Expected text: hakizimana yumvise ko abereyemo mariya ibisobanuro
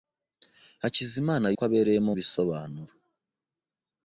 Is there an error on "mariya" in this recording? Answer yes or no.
yes